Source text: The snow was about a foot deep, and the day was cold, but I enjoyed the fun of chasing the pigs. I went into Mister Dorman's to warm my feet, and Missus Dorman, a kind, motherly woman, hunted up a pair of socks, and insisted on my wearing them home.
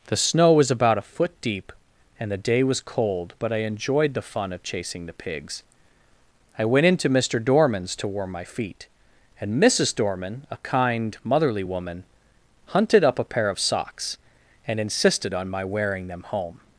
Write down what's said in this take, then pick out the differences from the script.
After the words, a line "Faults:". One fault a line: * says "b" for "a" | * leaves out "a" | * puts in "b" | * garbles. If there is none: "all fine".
The snow was about a foot deep, and the day was cold, but I enjoyed the fun of chasing the pigs. I went into Mister Dorman's to warm my feet, and Missus Dorman, a kind, motherly woman, hunted up a pair of socks, and insisted on my wearing them home.
Faults:
all fine